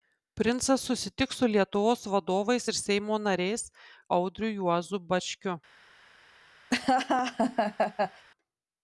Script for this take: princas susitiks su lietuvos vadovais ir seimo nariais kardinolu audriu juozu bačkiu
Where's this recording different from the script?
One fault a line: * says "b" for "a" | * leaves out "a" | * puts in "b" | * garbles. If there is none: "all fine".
* leaves out "kardinolu"